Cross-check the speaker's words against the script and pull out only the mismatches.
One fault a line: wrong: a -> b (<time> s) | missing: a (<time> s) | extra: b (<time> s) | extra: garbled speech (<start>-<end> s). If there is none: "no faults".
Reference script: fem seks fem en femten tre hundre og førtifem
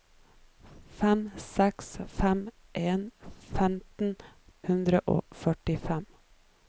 missing: tre (4.2 s)